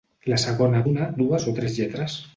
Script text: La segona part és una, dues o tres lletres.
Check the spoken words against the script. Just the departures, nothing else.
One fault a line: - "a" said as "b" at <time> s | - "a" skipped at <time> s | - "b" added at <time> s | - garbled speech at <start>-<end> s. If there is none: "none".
- "part és" skipped at 0.8 s